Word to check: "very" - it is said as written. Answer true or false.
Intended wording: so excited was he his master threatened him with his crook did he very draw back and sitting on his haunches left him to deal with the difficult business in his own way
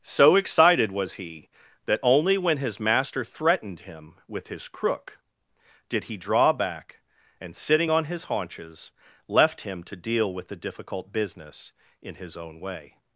false